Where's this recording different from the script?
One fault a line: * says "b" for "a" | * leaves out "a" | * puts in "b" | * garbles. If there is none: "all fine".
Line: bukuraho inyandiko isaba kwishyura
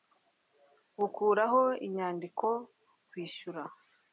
* leaves out "isaba"